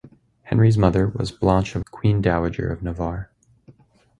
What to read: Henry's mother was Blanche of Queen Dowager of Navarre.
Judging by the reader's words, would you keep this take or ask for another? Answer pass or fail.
pass